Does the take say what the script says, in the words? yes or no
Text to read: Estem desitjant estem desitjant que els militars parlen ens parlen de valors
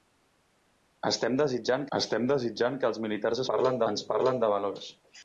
yes